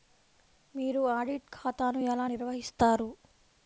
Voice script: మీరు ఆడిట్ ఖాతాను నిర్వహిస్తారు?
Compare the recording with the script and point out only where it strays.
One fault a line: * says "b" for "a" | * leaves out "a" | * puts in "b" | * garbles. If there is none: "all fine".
* puts in "ఎలా"